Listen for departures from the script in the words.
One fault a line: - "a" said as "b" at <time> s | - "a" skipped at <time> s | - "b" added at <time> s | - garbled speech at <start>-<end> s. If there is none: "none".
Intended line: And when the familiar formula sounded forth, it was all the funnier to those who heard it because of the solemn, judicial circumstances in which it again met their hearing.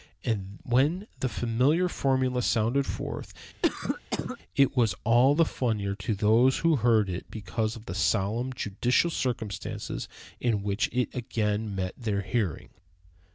none